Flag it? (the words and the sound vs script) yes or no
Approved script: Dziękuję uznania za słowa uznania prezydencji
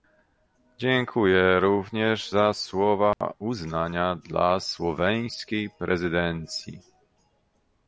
yes